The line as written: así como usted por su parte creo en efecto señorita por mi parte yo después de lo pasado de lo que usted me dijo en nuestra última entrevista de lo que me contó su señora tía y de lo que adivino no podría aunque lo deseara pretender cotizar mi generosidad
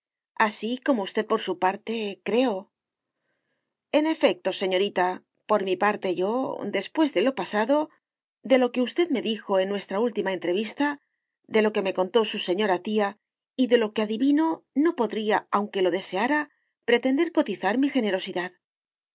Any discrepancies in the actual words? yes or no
no